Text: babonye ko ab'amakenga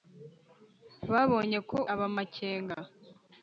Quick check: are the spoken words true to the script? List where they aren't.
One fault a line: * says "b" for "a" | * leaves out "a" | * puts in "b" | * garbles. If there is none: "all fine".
all fine